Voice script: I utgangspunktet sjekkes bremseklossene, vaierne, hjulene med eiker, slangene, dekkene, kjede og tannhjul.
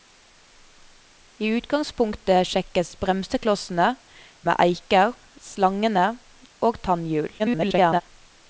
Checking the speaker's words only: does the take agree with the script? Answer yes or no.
no